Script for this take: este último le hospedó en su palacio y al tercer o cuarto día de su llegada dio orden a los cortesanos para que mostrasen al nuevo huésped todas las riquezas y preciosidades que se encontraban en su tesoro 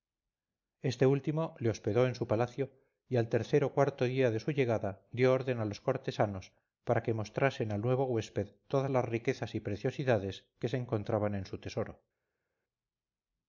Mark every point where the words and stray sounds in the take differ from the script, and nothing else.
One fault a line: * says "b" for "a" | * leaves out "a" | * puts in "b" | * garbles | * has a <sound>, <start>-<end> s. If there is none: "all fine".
all fine